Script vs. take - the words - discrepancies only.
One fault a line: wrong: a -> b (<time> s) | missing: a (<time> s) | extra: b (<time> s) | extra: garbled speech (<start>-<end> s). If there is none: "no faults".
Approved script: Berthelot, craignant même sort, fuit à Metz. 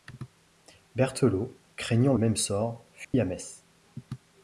no faults